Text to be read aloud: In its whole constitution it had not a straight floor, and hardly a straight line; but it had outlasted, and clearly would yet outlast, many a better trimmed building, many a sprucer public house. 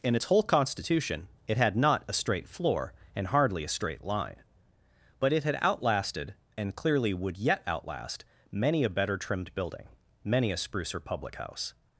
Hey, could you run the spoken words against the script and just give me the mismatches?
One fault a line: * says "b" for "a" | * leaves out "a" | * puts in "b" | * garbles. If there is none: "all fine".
all fine